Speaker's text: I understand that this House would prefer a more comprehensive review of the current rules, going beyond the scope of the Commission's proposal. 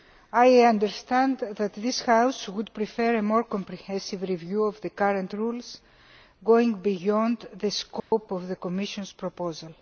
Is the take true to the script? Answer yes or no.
yes